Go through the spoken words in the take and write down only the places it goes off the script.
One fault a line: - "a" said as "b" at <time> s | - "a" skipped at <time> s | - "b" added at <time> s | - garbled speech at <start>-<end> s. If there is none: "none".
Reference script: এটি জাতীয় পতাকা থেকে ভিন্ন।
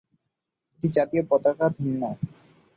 - "থেকে" skipped at 1.6 s